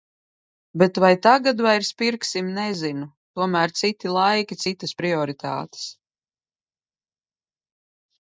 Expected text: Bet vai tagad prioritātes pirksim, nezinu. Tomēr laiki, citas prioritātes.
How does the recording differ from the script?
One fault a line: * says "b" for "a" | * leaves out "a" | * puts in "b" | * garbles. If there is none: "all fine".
* says "vairs" for "prioritātes"
* puts in "citi"